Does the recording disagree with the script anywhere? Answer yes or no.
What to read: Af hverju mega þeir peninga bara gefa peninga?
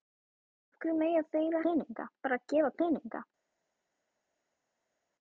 no